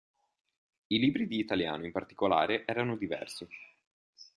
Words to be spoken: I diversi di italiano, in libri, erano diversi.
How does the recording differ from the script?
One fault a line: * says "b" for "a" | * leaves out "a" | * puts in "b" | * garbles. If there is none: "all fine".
* says "libri" for "diversi"
* says "particolare" for "libri"